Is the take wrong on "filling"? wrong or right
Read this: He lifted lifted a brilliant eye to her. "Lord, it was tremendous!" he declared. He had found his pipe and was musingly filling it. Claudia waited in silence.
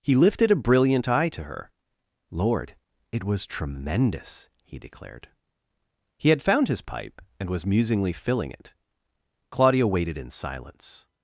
right